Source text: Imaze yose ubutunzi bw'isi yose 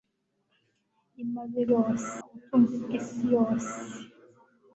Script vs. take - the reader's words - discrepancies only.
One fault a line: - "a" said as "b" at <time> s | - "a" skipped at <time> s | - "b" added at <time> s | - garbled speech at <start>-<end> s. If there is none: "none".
none